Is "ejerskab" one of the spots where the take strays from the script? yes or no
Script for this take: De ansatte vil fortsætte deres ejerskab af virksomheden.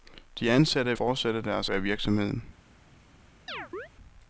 yes